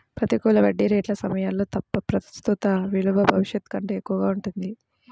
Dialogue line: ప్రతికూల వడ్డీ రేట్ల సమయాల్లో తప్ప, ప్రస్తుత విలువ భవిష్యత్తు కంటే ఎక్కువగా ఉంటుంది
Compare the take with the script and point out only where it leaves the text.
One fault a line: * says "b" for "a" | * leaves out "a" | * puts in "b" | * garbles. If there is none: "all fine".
all fine